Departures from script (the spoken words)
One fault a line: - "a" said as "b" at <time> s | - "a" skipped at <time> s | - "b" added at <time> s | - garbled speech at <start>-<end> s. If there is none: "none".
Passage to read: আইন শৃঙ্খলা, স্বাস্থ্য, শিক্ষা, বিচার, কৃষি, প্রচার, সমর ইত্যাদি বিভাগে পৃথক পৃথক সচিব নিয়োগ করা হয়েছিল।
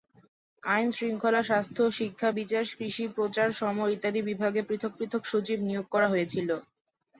none